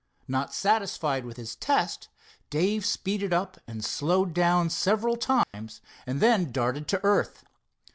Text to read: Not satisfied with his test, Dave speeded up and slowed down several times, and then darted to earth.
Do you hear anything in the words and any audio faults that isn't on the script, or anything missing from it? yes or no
yes